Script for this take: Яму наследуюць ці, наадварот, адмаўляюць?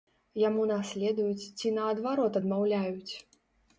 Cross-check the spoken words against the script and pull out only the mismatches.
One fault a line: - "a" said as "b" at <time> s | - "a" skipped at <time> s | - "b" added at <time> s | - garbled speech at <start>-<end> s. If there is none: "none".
none